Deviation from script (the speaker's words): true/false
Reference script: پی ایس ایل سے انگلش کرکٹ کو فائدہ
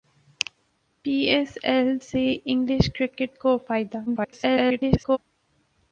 true